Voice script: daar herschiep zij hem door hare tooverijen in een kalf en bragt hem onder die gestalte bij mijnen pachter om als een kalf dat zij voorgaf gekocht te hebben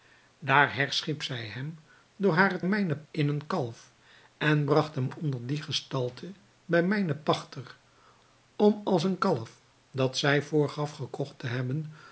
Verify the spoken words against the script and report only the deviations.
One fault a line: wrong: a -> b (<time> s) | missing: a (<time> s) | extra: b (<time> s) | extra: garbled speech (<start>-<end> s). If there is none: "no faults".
wrong: tooverijen -> mijnen (2.6 s)